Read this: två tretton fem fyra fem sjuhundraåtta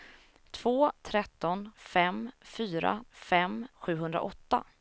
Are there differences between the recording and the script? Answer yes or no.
no